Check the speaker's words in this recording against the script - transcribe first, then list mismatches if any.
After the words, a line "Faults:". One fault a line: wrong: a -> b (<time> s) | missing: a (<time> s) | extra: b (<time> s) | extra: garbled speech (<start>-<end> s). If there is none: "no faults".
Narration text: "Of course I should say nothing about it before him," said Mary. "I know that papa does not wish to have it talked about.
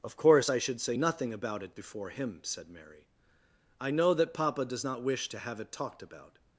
"Of course I should say nothing about it before him," said Mary. "I know that papa does not wish to have it talked about.
Faults:
no faults